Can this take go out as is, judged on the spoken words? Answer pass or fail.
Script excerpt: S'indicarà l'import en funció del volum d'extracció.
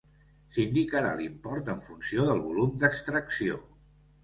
pass